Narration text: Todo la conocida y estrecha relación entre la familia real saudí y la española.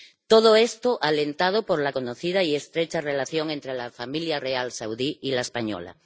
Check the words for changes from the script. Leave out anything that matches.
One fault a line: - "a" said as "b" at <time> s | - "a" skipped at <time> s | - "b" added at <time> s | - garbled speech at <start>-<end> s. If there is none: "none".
- "esto alentado por" added at 0.6 s